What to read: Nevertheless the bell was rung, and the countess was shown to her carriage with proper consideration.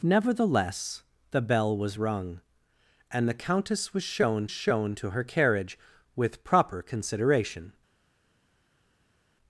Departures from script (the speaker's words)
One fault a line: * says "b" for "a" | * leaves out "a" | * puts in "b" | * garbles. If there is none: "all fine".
* puts in "shown"